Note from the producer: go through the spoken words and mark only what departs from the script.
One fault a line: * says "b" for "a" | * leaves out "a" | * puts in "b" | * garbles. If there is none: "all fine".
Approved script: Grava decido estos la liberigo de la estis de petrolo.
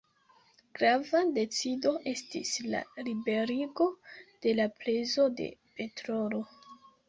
* says "estis" for "estos"
* says "prezo" for "estis"